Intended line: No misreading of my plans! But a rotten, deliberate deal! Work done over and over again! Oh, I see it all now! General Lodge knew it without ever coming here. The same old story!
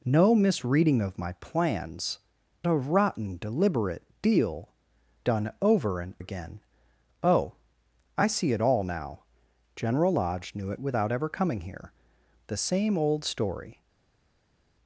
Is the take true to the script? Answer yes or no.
no